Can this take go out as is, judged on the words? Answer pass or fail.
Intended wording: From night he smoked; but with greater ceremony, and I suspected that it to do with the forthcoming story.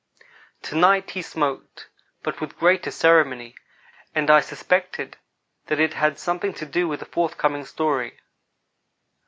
fail